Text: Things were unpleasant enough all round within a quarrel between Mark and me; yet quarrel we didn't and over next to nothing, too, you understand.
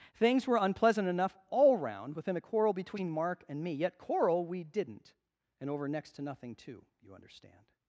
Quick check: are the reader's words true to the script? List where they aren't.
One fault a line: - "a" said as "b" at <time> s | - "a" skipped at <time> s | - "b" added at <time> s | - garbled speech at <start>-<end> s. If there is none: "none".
none